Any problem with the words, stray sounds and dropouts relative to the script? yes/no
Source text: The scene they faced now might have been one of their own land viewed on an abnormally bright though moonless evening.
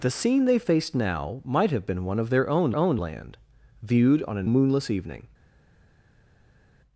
yes